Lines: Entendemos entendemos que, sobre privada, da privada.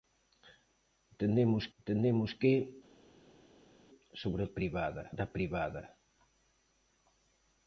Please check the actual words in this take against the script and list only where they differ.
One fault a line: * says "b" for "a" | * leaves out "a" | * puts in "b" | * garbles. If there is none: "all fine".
all fine